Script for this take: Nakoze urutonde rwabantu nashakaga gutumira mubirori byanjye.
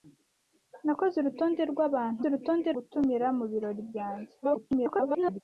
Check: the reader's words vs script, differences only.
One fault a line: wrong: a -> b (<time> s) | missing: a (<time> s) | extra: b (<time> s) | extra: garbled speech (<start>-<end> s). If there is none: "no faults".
wrong: nashakaga -> urutonde (2.2 s)
extra: garbled speech (4.4-5.4 s)